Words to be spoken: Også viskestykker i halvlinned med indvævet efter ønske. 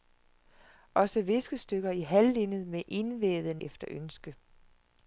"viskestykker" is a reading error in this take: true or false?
false